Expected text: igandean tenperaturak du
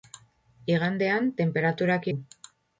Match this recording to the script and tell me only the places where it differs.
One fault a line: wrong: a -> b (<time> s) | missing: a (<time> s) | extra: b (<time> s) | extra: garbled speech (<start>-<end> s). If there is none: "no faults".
no faults